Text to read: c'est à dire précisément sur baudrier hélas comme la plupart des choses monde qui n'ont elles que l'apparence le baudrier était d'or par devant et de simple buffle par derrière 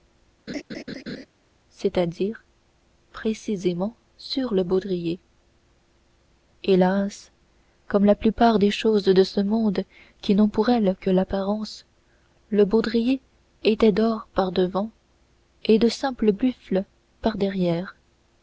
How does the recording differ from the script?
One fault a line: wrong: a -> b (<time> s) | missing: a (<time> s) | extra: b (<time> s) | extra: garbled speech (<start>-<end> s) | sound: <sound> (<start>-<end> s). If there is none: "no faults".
sound: laugh (0.5-1.3 s)
extra: le (4.5 s)
extra: de ce (9.0 s)
extra: pour (10.5 s)